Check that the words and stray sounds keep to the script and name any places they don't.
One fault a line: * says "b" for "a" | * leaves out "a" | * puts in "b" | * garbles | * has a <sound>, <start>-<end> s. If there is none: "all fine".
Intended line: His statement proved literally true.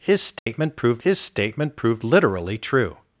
* has a dropout, 0.4-0.5 s
* puts in "his statement proved"